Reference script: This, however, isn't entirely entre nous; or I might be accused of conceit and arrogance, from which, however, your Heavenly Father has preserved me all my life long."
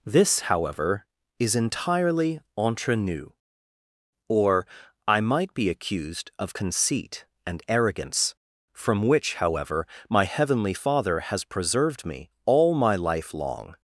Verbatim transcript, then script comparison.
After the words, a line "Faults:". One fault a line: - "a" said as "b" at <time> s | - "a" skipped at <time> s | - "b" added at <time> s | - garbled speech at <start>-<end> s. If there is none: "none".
This, however, is entirely entre nous; or I might be accused of conceit and arrogance, from which, however, my Heavenly Father has preserved me all my life long."
Faults:
- "isn't" said as "is" at 1.4 s
- "your" said as "my" at 10.1 s